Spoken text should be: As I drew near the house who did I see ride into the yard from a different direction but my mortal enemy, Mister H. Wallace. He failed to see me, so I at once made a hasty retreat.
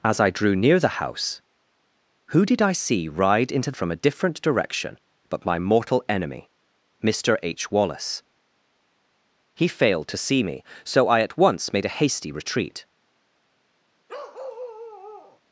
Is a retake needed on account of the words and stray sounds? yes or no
yes